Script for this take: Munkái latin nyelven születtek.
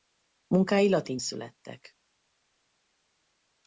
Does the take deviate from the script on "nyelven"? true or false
true